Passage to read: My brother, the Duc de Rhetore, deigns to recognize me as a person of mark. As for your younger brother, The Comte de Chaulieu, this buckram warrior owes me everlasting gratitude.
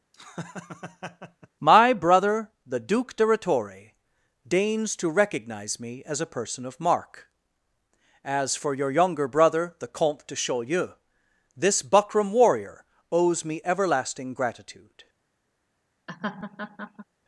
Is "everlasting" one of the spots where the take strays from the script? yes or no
no